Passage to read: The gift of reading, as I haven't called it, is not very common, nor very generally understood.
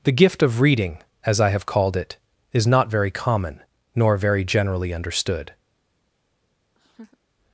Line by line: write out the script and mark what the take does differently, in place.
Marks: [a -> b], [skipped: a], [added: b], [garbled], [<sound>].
The gift of reading, as I [haven't -> have] called it, is not very common, nor very generally understood. [laugh]